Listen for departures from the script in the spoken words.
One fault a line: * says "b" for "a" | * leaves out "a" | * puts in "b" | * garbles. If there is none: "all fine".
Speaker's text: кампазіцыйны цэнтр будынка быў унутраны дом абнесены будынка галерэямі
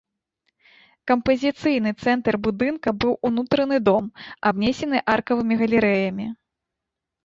* says "аркавымі" for "будынка"